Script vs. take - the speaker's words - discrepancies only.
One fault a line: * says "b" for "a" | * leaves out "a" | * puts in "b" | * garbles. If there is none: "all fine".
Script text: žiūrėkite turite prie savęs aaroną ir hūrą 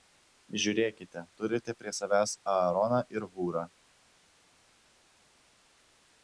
all fine